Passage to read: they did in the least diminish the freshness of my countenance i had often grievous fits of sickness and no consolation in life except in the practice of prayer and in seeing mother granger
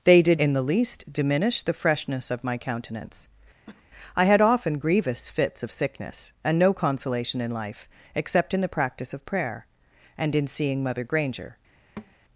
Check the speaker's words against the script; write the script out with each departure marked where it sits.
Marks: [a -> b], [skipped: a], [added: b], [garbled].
they did in the least diminish the freshness of my countenance i had often grievous fits of sickness and no consolation in life except in the practice of prayer and in seeing mother granger